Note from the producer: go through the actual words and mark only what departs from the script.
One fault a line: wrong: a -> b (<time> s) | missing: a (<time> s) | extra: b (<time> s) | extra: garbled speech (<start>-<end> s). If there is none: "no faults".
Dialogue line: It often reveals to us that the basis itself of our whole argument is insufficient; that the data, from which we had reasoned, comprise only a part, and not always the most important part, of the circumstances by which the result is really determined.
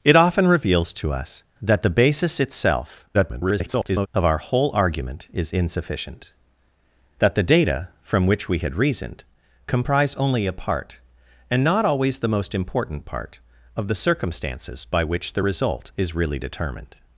extra: garbled speech (3.1-4.1 s)